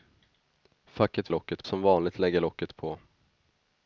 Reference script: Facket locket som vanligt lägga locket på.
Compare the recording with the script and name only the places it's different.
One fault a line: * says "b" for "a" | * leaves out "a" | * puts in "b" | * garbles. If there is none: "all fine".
all fine